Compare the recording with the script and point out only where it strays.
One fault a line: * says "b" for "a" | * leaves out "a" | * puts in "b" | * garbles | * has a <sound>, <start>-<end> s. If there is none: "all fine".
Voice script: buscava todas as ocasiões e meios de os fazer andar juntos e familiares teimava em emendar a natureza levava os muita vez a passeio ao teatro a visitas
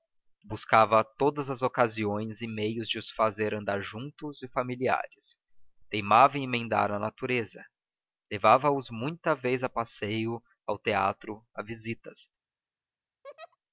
* has a laugh, 13.2-13.6 s